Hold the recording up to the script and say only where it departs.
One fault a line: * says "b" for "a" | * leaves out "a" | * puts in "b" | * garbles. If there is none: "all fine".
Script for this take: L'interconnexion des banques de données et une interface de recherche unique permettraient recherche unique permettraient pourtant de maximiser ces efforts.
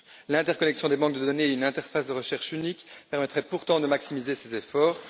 * leaves out "recherche unique permettraient"